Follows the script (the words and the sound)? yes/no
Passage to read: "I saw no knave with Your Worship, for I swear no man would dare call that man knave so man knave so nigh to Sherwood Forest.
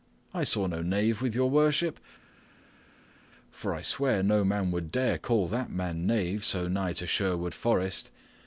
no